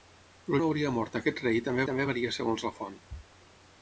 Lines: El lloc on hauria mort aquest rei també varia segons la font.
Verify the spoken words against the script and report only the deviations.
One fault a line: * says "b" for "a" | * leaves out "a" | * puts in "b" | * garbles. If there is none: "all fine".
* leaves out "lloc"
* puts in "també"